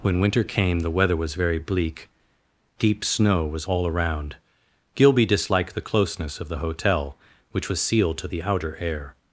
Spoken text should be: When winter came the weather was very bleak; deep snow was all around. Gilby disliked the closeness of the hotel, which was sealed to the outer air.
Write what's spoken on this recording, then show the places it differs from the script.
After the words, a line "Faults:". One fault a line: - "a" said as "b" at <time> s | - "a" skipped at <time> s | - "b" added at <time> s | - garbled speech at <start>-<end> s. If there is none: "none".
When winter came the weather was very bleak; deep snow was all around. Gilby disliked the closeness of the hotel, which was sealed to the outer air.
Faults:
none